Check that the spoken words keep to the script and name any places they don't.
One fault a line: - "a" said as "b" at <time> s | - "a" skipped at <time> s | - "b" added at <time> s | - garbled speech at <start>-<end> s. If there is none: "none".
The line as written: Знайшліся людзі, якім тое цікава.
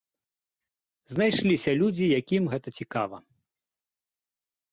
- "тое" said as "гэта" at 2.5 s